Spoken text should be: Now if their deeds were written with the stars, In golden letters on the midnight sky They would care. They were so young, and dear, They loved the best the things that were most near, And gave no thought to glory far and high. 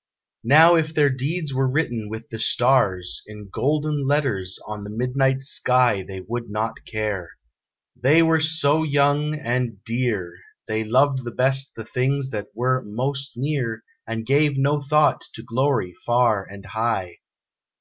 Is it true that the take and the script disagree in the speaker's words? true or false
true